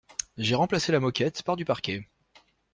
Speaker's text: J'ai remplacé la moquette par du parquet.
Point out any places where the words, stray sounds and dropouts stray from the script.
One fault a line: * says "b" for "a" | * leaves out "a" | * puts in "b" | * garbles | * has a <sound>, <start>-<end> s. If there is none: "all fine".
all fine